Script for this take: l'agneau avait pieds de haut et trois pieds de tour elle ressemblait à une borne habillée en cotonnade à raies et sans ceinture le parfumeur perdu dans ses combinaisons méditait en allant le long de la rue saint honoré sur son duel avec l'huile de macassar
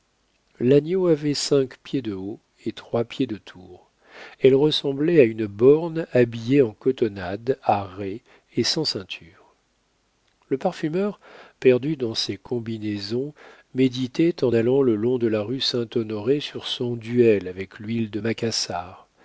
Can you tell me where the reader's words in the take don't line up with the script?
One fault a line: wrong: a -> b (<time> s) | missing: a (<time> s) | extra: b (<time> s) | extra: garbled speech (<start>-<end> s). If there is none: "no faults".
extra: cinq (1.4 s)